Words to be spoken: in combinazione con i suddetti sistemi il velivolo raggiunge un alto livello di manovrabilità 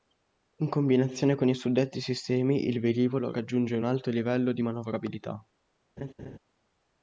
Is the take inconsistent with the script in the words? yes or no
no